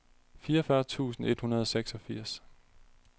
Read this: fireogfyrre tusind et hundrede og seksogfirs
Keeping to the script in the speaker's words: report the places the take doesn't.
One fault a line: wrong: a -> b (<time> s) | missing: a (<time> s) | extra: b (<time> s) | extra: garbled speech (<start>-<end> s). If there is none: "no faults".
no faults